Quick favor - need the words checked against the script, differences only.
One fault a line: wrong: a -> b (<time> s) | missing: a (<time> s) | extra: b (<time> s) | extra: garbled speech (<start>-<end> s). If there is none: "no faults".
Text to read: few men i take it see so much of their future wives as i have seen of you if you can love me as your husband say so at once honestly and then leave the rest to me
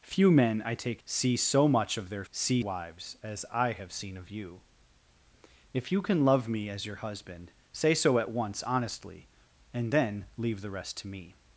missing: it (1.0 s)
wrong: future -> see (2.3 s)